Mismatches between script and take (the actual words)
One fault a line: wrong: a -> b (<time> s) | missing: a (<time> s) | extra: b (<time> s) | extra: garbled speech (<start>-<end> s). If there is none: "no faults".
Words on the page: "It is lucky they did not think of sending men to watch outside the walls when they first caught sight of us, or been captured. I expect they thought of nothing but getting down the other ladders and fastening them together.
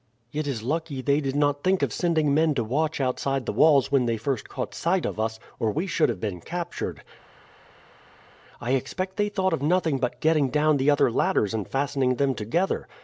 extra: we should have (5.7 s)